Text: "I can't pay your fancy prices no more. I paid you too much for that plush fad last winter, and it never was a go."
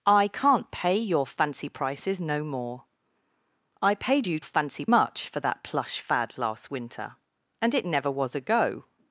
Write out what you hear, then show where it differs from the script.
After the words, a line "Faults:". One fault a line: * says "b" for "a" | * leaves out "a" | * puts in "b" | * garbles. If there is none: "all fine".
"I can't pay your fancy prices no more. I paid you fancy much for that plush fad last winter, and it never was a go."
Faults:
* says "fancy" for "too"